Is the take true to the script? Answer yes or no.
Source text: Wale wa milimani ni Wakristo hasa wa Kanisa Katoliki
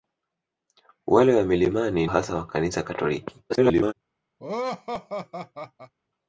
no